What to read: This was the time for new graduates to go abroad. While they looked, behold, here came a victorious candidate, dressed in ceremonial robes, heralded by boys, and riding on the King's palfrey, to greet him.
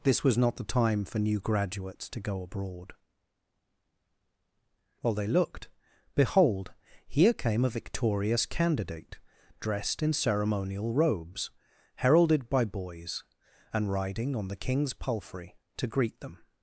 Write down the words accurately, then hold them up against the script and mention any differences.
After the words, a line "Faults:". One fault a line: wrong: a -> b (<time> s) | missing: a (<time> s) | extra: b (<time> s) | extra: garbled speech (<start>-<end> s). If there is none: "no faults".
This was not the time for new graduates to go abroad. While they looked, behold, here came a victorious candidate, dressed in ceremonial robes, heralded by boys, and riding on the King's palfrey, to greet them.
Faults:
extra: not (0.4 s)
wrong: him -> them (16.2 s)